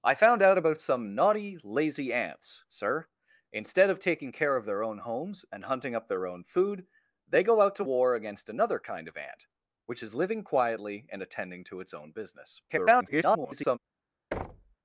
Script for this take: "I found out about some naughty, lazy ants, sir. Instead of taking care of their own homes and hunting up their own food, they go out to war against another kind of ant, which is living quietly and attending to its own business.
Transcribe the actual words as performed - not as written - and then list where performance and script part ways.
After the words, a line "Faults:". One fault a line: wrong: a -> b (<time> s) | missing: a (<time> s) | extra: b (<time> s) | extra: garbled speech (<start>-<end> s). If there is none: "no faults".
"I found out about some naughty, lazy ants, sir. Instead of taking care of their own homes and hunting up their own food, they go out to war against another kind of ant, which is living quietly and attending to its own business. [garbled]
Faults:
extra: garbled speech (12.7-13.8 s)